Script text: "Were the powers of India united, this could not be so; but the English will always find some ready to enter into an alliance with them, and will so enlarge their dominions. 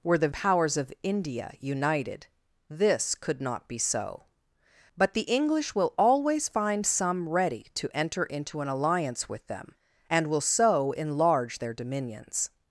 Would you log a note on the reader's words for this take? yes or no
no